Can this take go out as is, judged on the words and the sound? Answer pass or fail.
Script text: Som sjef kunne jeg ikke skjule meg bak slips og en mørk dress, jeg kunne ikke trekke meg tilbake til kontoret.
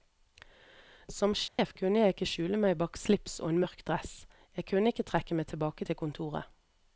fail